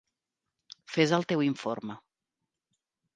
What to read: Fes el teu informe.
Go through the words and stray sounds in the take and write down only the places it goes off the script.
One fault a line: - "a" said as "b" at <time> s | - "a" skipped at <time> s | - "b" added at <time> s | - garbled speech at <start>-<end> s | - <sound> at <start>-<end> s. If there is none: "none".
none